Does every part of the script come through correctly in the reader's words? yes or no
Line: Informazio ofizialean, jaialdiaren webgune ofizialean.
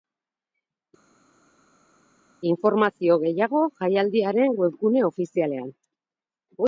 no